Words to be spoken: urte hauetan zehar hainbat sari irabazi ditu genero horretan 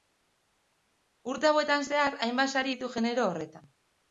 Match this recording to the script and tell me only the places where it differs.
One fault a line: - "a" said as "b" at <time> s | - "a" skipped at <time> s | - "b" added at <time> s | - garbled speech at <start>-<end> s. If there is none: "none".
- "irabazi" skipped at 2.7 s